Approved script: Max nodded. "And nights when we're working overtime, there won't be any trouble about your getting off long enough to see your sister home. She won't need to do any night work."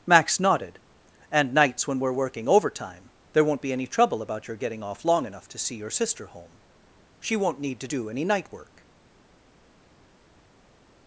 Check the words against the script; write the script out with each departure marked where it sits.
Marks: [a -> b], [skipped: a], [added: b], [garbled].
Max nodded. "And nights when we're working overtime, there won't be any trouble about your getting off long enough to see your sister home. She won't need to do any night work."